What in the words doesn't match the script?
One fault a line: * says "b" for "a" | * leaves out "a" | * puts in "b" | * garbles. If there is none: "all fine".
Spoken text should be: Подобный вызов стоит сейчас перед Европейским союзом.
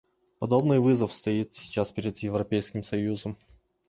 all fine